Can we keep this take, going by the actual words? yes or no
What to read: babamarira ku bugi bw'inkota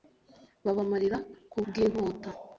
no